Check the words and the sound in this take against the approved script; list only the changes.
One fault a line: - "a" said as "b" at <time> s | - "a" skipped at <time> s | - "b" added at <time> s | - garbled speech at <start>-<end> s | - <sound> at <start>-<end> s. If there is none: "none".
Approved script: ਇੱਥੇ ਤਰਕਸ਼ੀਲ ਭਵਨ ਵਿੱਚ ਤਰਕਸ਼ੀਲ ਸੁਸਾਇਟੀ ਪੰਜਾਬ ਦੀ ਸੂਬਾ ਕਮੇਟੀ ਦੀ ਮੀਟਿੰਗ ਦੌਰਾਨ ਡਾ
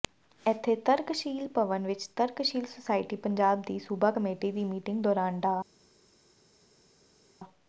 none